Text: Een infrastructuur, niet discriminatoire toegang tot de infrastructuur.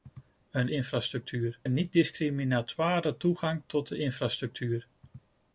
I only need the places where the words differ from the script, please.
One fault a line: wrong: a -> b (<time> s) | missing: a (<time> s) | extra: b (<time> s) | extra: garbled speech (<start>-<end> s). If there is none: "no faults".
no faults